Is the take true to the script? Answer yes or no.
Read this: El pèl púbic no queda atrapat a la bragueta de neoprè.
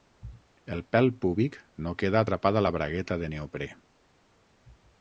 yes